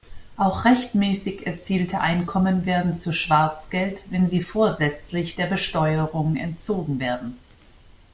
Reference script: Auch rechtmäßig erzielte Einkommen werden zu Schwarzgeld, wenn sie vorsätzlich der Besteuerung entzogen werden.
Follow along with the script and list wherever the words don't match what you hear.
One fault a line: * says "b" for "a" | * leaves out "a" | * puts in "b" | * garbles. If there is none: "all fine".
all fine